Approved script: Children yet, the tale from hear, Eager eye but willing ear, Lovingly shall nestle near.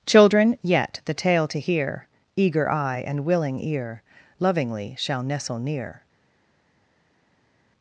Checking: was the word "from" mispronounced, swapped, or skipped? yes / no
yes